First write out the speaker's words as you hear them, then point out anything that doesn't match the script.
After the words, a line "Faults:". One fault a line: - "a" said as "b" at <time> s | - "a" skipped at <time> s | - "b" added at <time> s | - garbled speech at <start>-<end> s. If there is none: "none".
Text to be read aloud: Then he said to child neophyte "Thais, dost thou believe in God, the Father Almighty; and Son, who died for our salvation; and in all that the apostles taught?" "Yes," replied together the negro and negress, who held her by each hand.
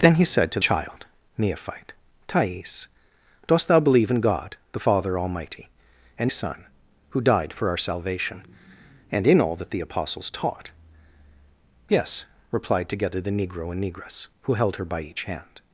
Then he said to child neophyte "Thais, dost thou believe in God, the Father Almighty; and Son, who died for our salvation; and in all that the apostles taught?" "Yes," replied together the negro and negress, who held her by each hand.
Faults:
none